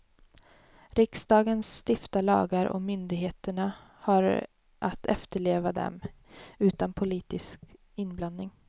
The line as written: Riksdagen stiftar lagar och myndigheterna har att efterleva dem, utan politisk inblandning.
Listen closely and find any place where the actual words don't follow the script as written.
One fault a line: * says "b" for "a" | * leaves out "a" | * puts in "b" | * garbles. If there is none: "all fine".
all fine